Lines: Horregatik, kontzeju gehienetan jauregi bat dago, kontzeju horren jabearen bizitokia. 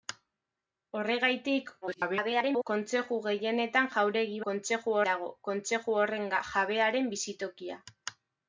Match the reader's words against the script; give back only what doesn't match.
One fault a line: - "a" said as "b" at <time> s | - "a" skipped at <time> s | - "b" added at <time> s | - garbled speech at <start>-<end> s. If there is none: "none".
- garbled speech at 1.8-2.6 s
- "bat" said as "kontzeju" at 4.5 s